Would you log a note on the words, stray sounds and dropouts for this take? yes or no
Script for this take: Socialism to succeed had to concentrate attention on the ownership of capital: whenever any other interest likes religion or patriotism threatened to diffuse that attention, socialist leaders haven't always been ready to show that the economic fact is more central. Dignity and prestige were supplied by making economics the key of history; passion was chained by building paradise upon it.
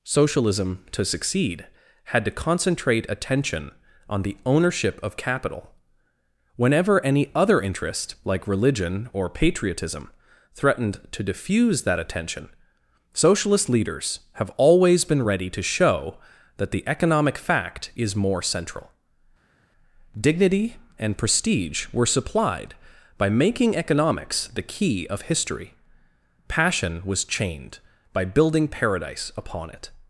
yes